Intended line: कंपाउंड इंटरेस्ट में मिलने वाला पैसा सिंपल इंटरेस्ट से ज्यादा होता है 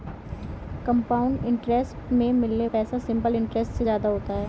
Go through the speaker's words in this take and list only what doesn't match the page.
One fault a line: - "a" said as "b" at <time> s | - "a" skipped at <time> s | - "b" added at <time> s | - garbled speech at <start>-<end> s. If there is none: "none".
- "वाला" skipped at 2.7 s